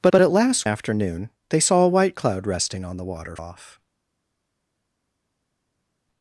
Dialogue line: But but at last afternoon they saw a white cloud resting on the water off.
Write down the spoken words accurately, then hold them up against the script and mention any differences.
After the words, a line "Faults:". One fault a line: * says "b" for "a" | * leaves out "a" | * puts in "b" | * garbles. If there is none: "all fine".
But but at last afternoon they saw a white cloud resting on the water off.
Faults:
all fine